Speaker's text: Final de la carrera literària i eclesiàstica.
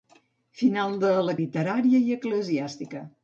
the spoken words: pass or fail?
fail